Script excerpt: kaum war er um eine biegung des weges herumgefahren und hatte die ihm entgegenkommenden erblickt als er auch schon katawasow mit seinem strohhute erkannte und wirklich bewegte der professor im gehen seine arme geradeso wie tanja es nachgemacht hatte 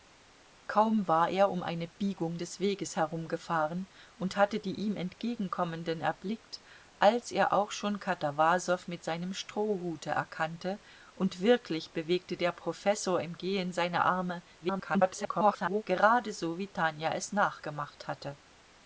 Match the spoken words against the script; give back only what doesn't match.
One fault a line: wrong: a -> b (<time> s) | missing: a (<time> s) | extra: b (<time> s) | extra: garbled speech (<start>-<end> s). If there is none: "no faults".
extra: garbled speech (14.6-15.8 s)